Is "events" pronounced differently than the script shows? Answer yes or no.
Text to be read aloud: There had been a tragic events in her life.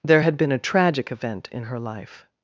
yes